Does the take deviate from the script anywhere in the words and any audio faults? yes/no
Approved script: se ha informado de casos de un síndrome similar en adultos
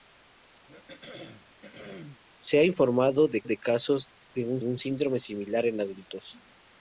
yes